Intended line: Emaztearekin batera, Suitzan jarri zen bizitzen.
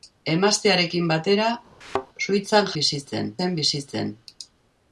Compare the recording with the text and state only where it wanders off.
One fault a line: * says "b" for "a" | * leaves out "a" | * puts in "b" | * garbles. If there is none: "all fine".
* says "bizitzen" for "jarri"